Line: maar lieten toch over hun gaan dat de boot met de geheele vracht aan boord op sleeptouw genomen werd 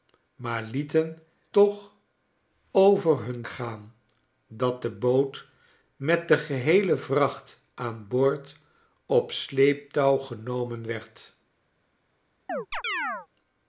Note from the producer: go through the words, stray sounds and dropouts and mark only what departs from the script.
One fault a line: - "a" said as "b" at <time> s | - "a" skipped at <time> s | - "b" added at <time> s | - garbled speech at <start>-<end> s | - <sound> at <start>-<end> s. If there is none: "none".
- chirp at 12.5-13.3 s